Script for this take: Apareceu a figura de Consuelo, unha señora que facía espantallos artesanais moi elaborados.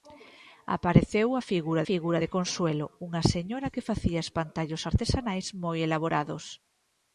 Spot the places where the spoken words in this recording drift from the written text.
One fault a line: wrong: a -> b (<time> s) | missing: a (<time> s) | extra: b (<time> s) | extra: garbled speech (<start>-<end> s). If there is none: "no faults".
extra: figura (1.9 s)